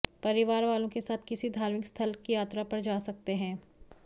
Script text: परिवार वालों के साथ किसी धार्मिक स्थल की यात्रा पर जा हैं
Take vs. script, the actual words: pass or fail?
fail